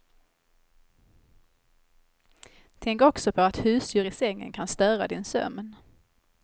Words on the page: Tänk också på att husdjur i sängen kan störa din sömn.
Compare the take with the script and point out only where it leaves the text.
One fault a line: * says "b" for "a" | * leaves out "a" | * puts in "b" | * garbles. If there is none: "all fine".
all fine